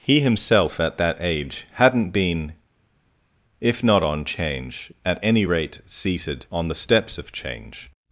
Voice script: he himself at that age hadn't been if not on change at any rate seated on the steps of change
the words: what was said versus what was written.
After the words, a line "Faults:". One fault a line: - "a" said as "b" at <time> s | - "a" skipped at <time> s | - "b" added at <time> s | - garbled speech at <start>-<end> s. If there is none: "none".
he himself at that age hadn't been if not on change at any rate seated on the steps of change
Faults:
none